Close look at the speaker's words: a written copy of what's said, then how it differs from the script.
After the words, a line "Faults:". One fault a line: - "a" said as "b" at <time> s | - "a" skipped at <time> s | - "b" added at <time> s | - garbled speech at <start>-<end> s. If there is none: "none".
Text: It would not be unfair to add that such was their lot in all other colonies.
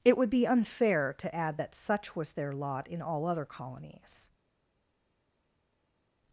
It would be unfair to add that such was their lot in all other colonies.
Faults:
- "not" skipped at 0.3 s